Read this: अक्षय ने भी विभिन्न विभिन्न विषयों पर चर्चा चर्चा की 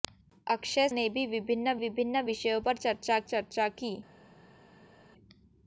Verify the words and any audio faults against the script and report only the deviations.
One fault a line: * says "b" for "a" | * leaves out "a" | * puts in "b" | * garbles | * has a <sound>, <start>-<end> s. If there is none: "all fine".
all fine